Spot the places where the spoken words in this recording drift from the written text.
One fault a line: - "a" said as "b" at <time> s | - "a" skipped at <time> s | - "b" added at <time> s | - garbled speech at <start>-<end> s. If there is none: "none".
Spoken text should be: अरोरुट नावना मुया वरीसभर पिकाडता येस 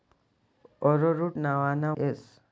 - "मुया वरीसभर पिकाडता" skipped at 1.9 s